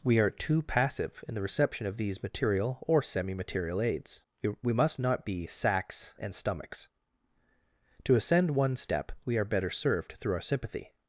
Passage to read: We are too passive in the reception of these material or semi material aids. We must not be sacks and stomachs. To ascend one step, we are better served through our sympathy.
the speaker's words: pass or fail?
pass